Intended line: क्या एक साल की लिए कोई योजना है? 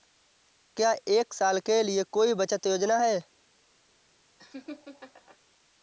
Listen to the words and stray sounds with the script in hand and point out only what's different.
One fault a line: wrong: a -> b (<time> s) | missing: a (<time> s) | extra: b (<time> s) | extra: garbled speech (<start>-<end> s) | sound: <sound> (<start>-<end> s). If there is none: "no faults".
wrong: की -> के (1.6 s)
extra: बचत (2.3 s)
sound: laugh (4.4-5.4 s)